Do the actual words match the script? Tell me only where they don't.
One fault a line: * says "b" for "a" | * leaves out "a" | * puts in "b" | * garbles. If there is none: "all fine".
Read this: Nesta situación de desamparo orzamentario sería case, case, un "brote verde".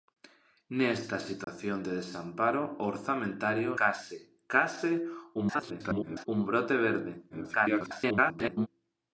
* leaves out "sería"
* garbles
* garbles